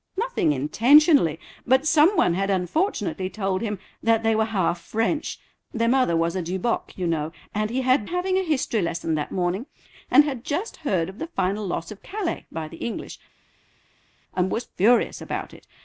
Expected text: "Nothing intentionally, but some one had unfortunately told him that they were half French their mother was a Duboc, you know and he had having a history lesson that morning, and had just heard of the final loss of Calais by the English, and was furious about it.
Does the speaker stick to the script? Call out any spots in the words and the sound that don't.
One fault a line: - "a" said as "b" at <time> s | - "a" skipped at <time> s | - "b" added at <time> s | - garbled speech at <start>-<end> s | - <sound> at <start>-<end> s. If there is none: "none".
none